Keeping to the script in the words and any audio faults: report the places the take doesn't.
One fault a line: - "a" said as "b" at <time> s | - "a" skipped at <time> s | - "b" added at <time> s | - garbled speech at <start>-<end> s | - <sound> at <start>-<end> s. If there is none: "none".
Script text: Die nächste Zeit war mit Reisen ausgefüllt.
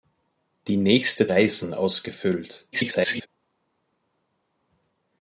- "Zeit war mit" skipped at 1.3 s
- garbled speech at 2.7-3.3 s